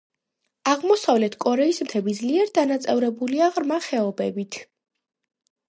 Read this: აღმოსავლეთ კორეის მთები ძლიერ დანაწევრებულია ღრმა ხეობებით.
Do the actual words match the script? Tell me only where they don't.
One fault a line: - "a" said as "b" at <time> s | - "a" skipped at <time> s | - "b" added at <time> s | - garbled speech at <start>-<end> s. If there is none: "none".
none